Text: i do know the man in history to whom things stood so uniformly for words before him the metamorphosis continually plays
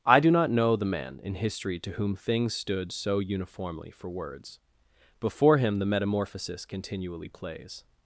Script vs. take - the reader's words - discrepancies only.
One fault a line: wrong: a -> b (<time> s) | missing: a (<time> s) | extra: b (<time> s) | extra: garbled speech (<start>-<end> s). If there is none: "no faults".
extra: not (0.3 s)